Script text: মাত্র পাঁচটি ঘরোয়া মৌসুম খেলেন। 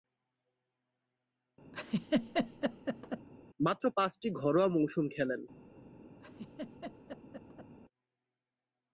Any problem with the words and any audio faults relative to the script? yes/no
yes